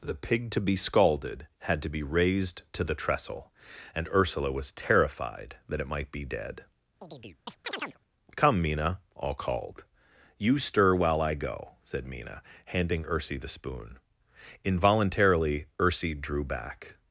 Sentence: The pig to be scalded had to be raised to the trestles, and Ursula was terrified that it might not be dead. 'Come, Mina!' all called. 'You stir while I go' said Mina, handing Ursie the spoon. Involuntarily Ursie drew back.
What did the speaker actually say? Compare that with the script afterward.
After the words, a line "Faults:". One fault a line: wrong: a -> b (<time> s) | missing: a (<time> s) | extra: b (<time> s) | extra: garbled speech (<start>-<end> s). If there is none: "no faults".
The pig to be scalded had to be raised to the trestle, and Ursula was terrified that it might be dead. 'Come, Mina!' all called. 'You stir while I go' said Mina, handing Ursie the spoon. Involuntarily Ursie drew back.
Faults:
wrong: trestles -> trestle (3.0 s)
missing: not (6.1 s)